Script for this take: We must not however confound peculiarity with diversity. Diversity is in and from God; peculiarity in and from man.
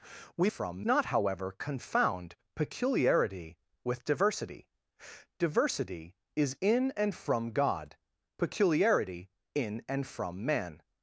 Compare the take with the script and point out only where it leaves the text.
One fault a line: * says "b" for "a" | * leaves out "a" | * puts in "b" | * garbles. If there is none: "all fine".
* says "from" for "must"